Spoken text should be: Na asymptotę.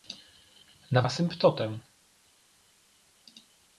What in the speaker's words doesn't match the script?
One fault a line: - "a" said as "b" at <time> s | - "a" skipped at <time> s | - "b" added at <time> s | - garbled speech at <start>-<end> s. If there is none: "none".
none